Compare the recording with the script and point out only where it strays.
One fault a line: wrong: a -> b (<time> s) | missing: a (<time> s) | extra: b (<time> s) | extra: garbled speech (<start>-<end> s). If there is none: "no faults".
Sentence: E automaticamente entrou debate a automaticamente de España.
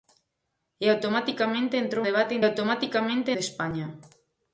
no faults